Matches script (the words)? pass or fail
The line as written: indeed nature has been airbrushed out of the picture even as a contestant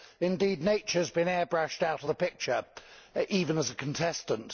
pass